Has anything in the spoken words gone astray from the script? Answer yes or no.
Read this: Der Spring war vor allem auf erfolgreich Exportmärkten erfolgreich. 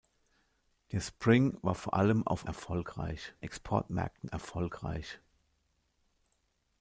no